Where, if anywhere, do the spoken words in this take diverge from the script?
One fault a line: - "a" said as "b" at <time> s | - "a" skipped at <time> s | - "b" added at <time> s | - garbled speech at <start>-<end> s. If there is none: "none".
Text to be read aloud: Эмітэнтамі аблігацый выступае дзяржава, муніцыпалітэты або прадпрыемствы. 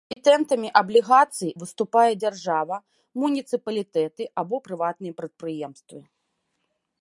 - "прыватныя" added at 4.7 s